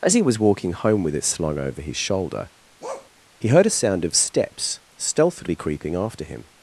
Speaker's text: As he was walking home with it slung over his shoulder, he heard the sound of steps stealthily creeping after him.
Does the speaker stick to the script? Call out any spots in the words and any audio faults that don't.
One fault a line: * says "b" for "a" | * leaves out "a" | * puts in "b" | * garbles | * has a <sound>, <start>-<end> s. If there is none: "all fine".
* has a bark, 2.8-3.1 s
* says "a" for "the"